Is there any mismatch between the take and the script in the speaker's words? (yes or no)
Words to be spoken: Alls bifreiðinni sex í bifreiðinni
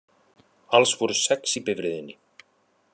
yes